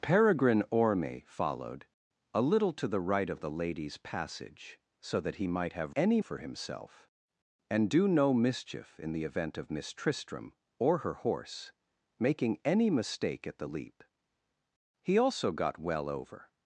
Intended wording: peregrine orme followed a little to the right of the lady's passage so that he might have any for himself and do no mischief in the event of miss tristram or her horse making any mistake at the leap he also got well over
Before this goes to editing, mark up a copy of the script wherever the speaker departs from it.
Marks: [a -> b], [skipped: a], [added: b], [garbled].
peregrine orme followed a little to the right of the lady's passage so that he might have any for himself and do no mischief in the event of miss tristram or her horse making any mistake at the leap he also got well over